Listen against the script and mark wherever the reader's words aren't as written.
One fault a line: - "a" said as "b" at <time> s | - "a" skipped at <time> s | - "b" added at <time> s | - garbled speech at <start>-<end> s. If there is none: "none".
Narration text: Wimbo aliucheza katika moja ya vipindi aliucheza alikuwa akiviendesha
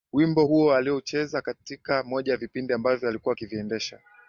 - "huo" added at 0.4 s
- "aliucheza" said as "ambavyo" at 2.7 s